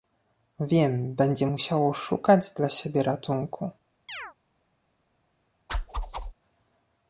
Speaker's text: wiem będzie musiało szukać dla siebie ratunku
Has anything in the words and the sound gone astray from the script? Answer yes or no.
yes